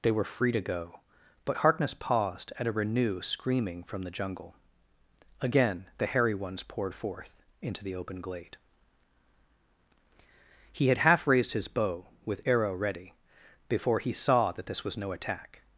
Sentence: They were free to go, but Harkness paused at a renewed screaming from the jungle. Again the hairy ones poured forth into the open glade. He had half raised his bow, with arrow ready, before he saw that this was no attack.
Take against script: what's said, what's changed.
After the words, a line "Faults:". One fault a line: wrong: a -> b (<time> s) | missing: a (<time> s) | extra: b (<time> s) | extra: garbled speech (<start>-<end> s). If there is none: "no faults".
They were free to go, but Harkness paused at a renew screaming from the jungle. Again the hairy ones poured forth into the open glade. He had half raised his bow, with arrow ready, before he saw that this was no attack.
Faults:
wrong: renewed -> renew (2.7 s)